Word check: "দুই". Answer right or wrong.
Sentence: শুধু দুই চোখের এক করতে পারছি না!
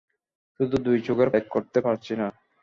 right